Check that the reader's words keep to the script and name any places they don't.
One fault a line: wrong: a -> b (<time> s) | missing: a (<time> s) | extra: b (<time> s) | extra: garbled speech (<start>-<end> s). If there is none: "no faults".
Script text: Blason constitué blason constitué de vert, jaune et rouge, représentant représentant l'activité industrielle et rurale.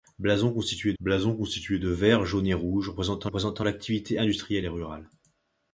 no faults